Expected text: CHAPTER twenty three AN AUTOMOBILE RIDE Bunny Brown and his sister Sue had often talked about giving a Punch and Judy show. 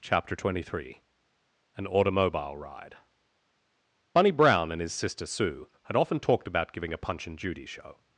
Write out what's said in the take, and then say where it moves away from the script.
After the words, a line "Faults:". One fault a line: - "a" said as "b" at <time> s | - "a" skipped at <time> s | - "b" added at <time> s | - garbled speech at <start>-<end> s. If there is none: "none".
CHAPTER twenty three AN AUTOMOBILE RIDE Bunny Brown and his sister Sue had often talked about giving a Punch and Judy show.
Faults:
none